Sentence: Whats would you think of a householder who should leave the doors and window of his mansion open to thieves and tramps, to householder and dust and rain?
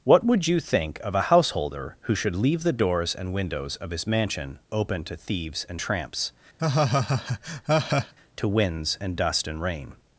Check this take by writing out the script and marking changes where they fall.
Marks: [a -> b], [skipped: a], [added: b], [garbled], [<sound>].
[Whats -> What] would you think of a householder who should leave the doors and [window -> windows] of his mansion open to thieves and tramps, [laugh] to [householder -> winds] and dust and rain?